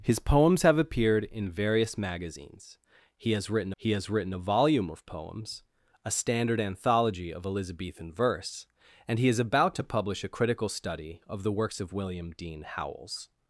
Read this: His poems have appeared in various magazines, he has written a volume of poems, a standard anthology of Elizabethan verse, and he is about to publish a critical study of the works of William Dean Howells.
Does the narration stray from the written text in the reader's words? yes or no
yes